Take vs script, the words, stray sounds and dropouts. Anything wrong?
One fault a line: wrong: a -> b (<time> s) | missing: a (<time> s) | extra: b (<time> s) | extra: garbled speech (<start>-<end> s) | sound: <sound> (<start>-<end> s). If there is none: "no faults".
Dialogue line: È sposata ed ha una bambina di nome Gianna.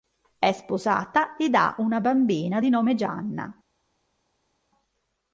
no faults